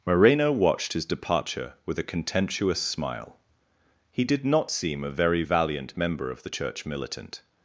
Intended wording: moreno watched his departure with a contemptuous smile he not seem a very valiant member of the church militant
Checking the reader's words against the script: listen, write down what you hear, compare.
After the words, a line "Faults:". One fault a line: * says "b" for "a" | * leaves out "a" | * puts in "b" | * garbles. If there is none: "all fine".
moreno watched his departure with a contemptuous smile he did not seem a very valiant member of the church militant
Faults:
* puts in "did"